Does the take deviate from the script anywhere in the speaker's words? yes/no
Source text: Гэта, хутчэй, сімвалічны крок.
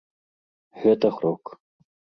yes